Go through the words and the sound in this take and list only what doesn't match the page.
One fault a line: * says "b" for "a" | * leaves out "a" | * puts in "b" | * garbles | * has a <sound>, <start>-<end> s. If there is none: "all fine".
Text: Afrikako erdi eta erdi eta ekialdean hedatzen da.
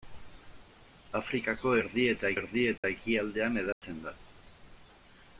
* has a dropout, 2.8-2.8 s
* has a dropout, 3.7-3.8 s